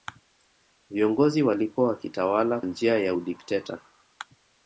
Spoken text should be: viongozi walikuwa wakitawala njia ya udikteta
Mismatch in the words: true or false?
false